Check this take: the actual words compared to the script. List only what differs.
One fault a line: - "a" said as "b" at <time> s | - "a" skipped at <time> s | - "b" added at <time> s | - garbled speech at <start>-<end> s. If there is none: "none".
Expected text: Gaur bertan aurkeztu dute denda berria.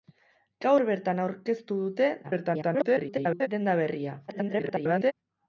- garbled speech at 2.2-3.5 s
- garbled speech at 4.3-5.1 s